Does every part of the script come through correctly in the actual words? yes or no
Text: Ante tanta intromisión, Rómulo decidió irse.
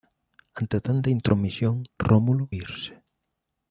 no